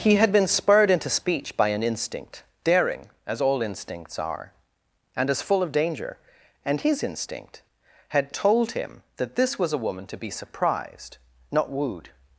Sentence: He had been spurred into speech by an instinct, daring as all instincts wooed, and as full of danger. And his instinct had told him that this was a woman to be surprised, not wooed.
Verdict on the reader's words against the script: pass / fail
fail